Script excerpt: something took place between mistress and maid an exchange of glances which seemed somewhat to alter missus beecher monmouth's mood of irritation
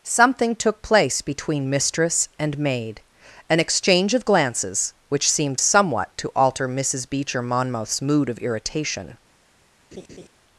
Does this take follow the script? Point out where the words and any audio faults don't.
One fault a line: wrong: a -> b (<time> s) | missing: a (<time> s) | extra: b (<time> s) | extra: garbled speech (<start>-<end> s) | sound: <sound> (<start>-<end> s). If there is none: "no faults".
sound: laugh (9.9-10.3 s)